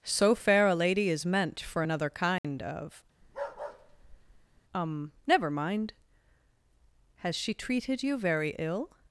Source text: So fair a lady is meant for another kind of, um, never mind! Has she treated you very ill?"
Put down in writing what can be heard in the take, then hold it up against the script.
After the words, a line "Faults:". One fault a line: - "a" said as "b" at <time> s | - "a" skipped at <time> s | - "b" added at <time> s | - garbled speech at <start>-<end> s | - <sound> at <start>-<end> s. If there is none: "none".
So fair a lady is meant for another kind of, um, never mind! Has she treated you very ill?"
Faults:
- dropout at 2.4-2.4 s
- bark at 3.2-4.6 s